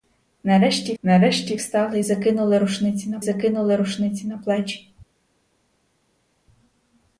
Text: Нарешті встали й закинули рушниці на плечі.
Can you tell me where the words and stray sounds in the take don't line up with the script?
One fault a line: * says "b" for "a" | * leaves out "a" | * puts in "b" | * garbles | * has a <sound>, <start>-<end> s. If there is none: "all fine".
* puts in "нарешті"
* puts in "закинули рушниці на"